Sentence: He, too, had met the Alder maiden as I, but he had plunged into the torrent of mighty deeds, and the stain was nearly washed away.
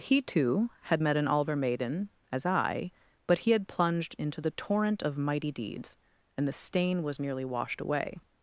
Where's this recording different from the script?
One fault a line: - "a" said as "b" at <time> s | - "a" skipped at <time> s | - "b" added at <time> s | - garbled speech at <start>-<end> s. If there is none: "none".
- "the" said as "an" at 1.2 s